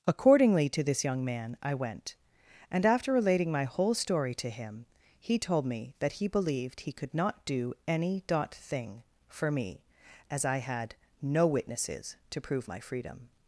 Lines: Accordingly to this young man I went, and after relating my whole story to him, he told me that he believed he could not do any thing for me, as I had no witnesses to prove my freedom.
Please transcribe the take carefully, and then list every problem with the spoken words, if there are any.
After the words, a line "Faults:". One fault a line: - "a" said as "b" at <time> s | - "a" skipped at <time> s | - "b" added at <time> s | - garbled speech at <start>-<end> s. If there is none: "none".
Accordingly to this young man I went, and after relating my whole story to him, he told me that he believed he could not do any dot thing for me, as I had no witnesses to prove my freedom.
Faults:
- "dot" added at 8.2 s